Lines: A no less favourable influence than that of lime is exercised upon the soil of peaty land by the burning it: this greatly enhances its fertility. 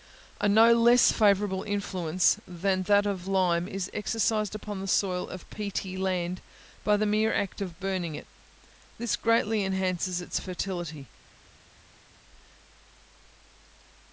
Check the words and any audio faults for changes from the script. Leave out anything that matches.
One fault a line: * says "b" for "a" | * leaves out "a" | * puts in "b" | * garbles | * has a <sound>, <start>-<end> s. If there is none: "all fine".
* puts in "mere act of"